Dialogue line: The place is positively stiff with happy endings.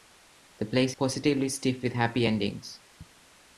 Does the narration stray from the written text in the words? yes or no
yes